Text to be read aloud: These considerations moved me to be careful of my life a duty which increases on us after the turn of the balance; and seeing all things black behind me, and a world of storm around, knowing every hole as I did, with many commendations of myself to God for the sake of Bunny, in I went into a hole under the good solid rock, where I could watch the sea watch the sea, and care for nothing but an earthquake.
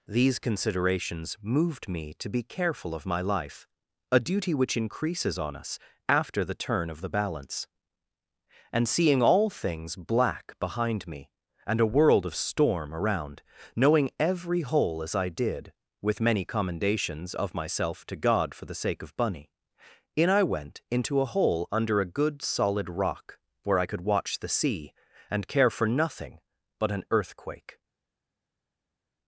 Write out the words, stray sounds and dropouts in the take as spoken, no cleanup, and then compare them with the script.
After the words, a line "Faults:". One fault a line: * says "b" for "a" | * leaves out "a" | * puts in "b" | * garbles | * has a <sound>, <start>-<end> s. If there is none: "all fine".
These considerations moved me to be careful of my life a duty which increases on us after the turn of the balance; and seeing all things black behind me, and a world of storm around, knowing every hole as I did, with many commendations of myself to God for the sake of Bunny, in I went into a hole under a good solid rock, where I could watch the sea, and care for nothing but an earthquake.
Faults:
* says "a" for "the"
* leaves out "watch the sea"